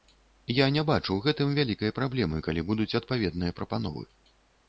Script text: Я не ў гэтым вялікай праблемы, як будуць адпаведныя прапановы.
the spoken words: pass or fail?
fail